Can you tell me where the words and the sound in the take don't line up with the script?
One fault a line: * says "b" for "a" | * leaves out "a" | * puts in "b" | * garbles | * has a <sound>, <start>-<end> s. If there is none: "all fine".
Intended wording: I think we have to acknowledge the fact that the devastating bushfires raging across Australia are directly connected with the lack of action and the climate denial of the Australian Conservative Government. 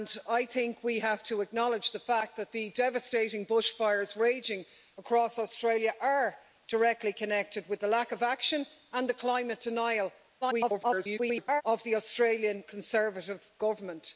* garbles